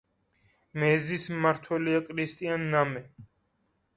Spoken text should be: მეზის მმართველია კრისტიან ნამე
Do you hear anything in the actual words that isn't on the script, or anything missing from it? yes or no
no